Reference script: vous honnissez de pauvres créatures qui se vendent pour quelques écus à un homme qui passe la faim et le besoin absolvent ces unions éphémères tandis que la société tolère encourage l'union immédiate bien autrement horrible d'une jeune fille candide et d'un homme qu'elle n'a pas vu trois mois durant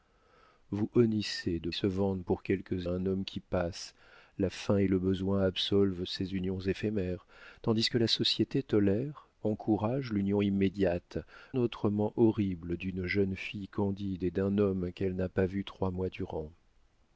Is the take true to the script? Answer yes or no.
no